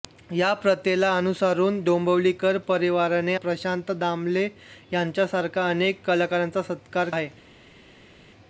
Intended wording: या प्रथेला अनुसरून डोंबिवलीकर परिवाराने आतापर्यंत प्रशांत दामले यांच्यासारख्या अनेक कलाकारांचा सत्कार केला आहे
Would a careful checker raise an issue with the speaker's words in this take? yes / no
yes